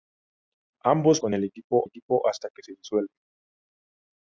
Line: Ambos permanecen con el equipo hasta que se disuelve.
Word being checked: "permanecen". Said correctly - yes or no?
no